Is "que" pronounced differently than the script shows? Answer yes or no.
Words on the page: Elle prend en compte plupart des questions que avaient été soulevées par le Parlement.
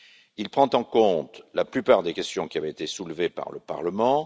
yes